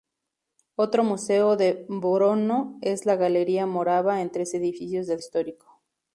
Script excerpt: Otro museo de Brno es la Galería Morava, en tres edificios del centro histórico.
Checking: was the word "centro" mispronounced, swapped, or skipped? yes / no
yes